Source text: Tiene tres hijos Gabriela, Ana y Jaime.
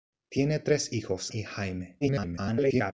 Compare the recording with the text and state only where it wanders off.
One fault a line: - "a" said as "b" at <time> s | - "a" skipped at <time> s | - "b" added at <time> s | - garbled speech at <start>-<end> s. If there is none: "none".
- "Gabriela Ana" skipped at 1.3 s
- garbled speech at 2.0-2.9 s